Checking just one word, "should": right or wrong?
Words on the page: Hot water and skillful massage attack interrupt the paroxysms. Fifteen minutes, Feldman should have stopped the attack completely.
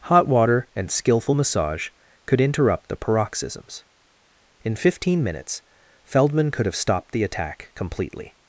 wrong